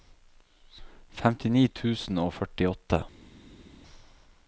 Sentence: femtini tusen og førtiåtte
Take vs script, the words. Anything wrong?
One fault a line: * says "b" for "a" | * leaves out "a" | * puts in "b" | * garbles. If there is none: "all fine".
all fine